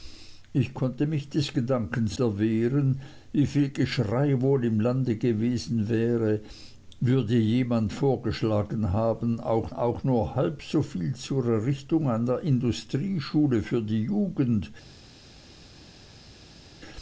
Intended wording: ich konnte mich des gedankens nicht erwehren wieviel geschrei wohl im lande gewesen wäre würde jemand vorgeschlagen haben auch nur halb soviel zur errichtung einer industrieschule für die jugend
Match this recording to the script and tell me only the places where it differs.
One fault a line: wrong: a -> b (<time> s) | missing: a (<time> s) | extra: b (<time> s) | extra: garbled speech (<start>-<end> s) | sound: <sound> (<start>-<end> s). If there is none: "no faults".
missing: nicht (2.2 s)
extra: auch (9.7 s)